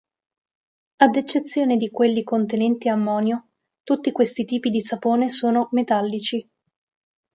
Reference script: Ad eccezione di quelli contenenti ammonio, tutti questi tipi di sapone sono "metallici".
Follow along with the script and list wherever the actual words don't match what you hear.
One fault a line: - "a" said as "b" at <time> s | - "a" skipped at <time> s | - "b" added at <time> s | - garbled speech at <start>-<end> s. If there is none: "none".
none